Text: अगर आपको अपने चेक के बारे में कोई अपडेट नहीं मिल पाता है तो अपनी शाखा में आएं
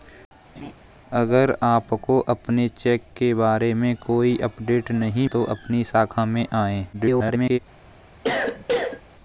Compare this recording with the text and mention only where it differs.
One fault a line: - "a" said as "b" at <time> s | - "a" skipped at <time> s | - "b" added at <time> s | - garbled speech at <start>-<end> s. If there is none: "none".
- "मिल पाता है" skipped at 5.3 s
- garbled speech at 6.9-7.6 s